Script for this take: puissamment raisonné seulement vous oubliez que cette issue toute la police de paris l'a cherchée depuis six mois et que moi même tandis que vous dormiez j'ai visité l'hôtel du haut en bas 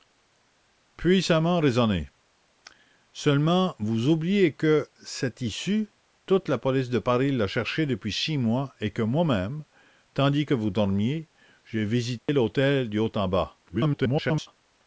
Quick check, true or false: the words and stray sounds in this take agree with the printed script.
false